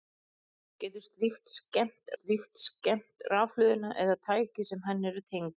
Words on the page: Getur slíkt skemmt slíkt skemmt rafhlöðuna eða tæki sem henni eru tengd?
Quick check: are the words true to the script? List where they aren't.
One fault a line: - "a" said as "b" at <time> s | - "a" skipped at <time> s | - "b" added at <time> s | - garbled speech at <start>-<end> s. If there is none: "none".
none